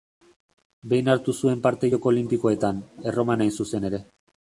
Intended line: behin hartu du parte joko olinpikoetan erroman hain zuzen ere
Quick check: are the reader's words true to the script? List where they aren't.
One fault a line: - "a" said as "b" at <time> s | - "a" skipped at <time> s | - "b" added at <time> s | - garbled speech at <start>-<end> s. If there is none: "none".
- "du" said as "zuen" at 1.4 s